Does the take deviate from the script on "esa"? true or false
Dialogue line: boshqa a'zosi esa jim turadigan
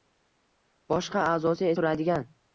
true